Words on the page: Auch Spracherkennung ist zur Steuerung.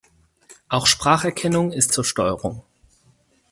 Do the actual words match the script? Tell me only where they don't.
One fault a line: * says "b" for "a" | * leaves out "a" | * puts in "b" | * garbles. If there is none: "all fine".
all fine